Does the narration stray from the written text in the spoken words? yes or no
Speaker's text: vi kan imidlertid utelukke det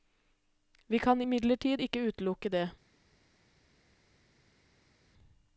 yes